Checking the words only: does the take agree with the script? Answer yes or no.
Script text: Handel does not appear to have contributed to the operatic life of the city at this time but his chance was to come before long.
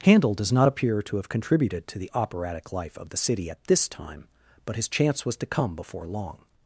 yes